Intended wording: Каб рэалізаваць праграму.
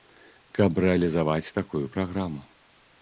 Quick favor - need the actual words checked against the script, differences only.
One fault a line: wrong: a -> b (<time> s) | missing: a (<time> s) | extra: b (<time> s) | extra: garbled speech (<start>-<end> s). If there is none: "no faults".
extra: такую (1.6 s)